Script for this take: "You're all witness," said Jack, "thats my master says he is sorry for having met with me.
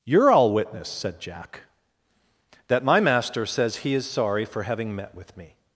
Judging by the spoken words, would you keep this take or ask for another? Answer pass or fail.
fail